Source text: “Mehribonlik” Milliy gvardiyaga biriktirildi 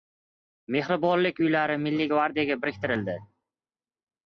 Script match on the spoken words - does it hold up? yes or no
no